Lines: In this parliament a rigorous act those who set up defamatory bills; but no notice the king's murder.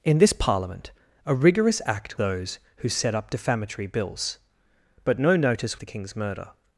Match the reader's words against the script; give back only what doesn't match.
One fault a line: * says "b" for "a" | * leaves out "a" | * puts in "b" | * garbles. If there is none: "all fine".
all fine